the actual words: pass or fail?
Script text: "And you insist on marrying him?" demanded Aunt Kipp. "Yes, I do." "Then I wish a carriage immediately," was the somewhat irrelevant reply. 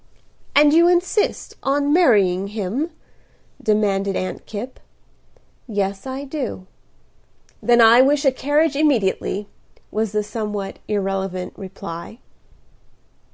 pass